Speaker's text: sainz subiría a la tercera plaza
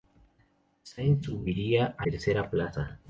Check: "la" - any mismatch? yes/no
yes